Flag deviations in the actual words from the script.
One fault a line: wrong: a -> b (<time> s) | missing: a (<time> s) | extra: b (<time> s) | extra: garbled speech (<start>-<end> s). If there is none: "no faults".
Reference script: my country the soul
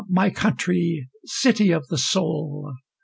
extra: city of (1.3 s)